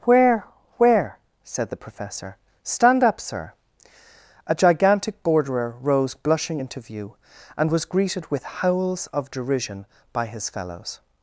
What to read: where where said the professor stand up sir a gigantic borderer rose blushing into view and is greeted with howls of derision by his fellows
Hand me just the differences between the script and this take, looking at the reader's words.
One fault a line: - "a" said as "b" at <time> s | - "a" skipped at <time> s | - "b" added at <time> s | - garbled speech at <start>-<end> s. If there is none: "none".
- "is" said as "was" at 7.7 s